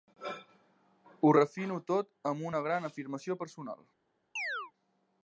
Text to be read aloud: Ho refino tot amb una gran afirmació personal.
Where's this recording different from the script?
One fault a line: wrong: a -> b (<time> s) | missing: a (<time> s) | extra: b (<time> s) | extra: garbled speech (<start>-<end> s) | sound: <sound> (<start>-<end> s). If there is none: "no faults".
sound: chirp (4.4-4.7 s)